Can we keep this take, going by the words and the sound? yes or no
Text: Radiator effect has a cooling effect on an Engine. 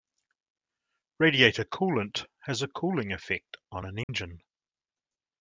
no